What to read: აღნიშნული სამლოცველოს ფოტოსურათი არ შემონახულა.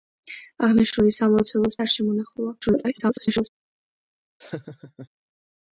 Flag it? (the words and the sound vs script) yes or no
yes